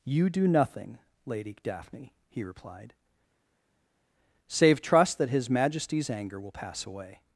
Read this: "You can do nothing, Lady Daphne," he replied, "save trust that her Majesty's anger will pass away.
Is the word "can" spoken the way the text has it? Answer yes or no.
no